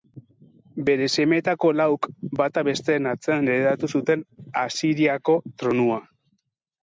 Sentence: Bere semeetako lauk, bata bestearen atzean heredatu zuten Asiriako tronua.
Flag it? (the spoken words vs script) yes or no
no